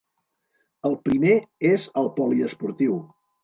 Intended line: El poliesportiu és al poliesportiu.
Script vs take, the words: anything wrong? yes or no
yes